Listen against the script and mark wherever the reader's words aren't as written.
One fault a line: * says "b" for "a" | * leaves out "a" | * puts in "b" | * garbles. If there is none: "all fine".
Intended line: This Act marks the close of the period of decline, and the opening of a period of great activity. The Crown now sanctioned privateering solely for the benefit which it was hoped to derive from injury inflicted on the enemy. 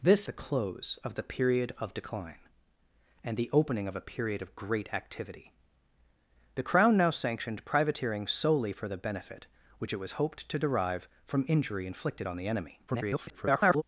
* leaves out "Act marks"
* garbles